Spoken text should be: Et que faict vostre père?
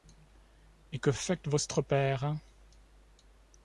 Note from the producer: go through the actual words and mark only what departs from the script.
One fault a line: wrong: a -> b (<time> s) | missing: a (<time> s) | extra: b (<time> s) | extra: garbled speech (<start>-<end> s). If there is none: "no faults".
no faults